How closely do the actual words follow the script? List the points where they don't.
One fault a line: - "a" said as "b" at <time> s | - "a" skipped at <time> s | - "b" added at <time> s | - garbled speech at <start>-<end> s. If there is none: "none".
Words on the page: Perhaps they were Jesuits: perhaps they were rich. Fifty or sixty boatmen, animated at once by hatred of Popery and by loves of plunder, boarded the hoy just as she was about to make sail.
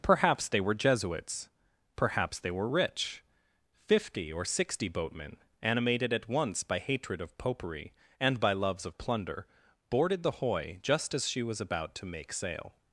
none